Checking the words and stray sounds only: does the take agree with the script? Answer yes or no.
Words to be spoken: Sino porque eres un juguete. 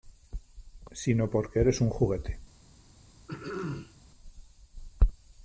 no